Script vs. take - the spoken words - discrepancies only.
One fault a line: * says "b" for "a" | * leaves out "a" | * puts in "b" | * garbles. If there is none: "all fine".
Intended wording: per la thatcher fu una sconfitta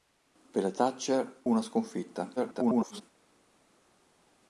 * leaves out "fu"
* garbles